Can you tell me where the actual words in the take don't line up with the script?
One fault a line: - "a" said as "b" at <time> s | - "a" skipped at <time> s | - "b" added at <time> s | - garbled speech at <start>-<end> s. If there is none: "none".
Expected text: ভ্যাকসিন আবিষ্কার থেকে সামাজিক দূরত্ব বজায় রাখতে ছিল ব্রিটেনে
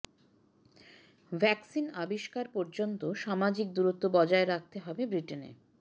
- "থেকে" said as "পর্যন্ত" at 2.5 s
- "ছিল" said as "হবে" at 4.8 s